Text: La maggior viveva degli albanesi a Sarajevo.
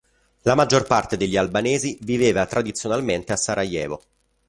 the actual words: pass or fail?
fail